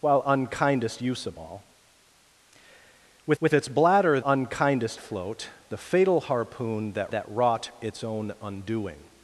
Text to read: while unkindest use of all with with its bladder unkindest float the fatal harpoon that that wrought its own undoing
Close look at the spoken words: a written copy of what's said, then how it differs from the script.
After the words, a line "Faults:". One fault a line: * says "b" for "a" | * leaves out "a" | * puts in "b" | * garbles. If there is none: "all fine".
while unkindest use of all with with its bladder unkindest float the fatal harpoon that that wrought its own undoing
Faults:
all fine